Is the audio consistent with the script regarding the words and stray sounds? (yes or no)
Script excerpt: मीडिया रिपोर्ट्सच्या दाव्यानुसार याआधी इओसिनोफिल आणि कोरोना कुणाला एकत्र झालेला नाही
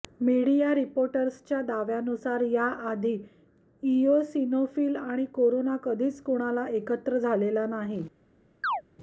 no